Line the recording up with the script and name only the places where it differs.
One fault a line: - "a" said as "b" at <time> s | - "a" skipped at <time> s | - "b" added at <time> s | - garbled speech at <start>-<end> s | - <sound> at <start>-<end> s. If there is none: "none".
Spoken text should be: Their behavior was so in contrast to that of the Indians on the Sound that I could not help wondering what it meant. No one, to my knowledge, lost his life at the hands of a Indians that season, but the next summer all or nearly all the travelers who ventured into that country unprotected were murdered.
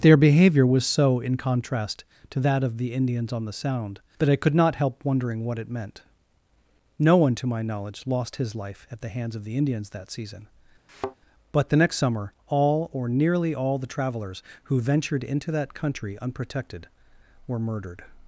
- "a" said as "the" at 9.4 s
- thud at 10.9-11.2 s